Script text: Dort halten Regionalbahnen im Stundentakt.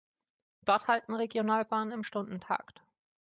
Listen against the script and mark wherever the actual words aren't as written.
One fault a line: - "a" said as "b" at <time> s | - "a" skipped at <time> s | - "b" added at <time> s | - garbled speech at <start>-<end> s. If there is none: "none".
none